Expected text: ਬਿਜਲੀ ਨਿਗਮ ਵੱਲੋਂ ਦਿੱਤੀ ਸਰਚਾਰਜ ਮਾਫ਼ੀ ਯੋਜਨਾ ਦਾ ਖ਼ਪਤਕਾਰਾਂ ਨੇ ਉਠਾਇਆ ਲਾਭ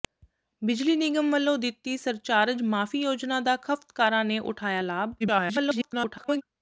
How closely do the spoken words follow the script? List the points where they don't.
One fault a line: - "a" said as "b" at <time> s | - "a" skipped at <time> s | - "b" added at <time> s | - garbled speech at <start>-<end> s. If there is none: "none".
- garbled speech at 5.2-6.4 s